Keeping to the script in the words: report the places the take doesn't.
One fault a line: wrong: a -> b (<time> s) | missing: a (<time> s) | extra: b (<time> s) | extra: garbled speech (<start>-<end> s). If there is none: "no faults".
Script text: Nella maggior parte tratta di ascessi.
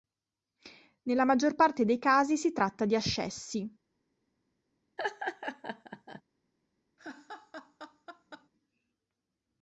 extra: dei casi si (1.9 s)